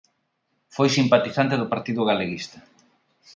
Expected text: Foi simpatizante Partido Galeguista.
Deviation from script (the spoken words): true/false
true